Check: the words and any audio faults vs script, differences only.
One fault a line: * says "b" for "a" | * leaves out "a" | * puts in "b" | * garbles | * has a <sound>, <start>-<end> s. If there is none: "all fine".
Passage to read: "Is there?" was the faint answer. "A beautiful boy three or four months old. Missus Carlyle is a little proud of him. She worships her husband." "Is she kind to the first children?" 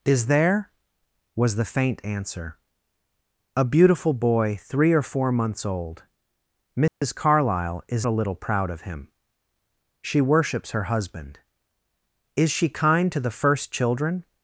* has a dropout, 6.9-7.0 s